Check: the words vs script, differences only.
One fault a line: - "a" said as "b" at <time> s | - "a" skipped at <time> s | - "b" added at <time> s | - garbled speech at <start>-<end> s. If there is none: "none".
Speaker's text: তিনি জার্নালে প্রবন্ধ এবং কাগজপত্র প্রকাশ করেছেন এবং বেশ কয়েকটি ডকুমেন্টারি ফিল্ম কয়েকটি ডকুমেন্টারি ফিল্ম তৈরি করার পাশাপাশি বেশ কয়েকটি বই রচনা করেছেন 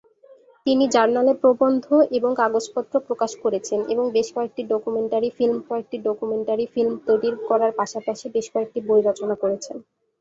none